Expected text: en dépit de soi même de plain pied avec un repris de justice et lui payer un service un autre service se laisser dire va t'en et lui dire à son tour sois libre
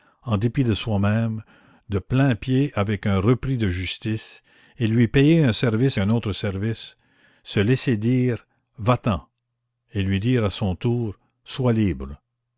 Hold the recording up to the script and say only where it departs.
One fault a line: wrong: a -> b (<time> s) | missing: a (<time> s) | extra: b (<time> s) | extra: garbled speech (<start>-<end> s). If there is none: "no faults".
no faults